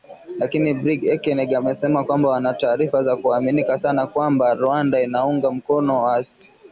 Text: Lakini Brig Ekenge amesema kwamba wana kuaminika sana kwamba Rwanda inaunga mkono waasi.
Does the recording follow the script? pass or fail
fail